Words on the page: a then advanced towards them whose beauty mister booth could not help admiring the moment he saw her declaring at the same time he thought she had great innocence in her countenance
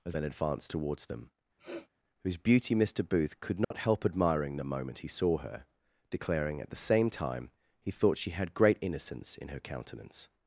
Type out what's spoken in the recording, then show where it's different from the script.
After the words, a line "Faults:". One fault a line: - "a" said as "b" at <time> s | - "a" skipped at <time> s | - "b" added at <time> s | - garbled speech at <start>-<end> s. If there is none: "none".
a then advanced towards them whose beauty mister booth could not help admiring the moment he saw her declaring at the same time he thought she had great innocence in her countenance
Faults:
none